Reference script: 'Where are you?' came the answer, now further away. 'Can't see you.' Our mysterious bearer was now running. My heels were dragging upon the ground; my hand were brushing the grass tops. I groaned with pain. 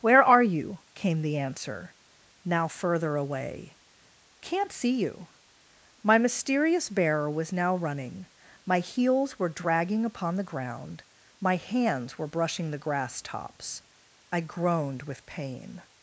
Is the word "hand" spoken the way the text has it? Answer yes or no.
no